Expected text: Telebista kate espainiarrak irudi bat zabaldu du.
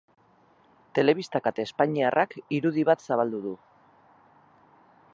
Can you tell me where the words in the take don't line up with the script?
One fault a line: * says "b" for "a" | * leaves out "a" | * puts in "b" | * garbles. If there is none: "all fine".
all fine